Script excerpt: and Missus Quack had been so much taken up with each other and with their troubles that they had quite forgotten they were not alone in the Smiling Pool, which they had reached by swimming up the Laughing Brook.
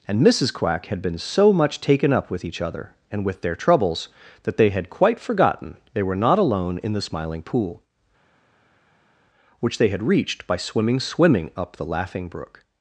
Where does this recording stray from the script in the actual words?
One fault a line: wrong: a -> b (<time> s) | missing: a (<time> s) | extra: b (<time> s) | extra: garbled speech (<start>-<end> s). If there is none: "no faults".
extra: swimming (11.0 s)